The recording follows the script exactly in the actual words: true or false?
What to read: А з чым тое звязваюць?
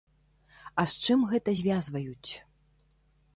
false